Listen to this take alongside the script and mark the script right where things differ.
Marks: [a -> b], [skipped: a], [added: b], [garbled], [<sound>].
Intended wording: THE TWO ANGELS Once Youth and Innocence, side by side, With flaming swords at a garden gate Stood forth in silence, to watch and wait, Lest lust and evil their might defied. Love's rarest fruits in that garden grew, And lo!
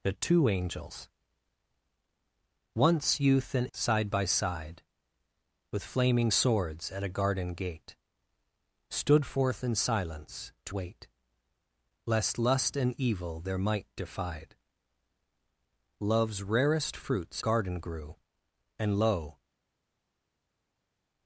THE TWO ANGELS Once Youth and [skipped: Innocence,] side by side, With flaming swords at a garden gate Stood forth in silence, to [skipped: watch and] wait, Lest lust and evil their might defied. Love's rarest fruits [skipped: in that] garden grew, And lo!